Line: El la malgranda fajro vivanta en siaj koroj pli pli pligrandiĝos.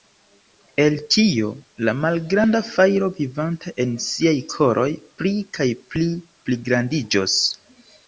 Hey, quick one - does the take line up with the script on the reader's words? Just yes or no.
no